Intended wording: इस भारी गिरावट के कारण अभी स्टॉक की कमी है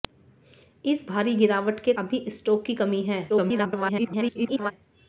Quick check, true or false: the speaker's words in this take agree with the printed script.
false